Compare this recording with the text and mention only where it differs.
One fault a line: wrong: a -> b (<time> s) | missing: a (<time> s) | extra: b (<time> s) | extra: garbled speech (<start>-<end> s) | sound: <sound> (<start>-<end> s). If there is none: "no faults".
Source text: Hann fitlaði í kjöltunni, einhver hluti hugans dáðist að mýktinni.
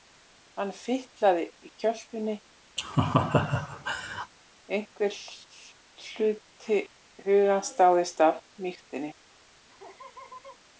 sound: laugh (2.8-4.3 s)
sound: laugh (9.7-10.6 s)